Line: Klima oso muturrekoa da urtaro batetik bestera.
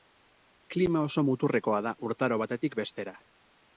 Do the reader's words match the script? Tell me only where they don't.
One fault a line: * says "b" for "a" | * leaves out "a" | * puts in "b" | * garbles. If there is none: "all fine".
all fine